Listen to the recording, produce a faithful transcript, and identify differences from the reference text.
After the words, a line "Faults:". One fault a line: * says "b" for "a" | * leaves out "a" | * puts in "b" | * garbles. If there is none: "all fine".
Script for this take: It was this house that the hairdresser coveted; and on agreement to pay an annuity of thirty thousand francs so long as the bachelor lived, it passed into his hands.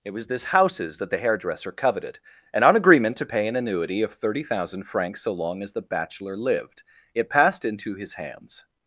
It was this houses that the hairdresser coveted; and on agreement to pay an annuity of thirty thousand francs so long as the bachelor lived, it passed into his hands.
Faults:
* says "houses" for "house"